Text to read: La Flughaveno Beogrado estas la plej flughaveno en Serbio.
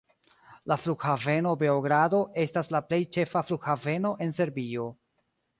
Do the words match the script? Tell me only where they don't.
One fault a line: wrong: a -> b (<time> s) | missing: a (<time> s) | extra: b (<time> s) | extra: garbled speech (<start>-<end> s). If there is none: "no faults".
extra: ĉefa (3.2 s)